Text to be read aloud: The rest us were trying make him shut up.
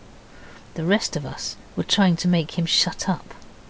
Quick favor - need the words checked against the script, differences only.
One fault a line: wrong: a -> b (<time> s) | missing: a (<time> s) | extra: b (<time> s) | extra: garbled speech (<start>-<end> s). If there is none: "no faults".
extra: of (1.1 s)
extra: to (2.2 s)